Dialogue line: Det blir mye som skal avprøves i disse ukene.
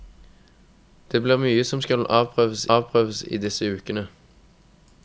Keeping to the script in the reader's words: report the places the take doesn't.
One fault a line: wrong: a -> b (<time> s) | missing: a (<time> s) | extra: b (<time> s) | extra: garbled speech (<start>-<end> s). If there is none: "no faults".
extra: avprøves (2.8 s)